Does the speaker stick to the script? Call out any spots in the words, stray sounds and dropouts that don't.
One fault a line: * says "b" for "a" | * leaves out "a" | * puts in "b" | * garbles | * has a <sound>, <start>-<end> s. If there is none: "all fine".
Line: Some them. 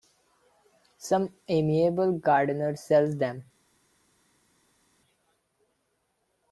* puts in "amiable gardener sells"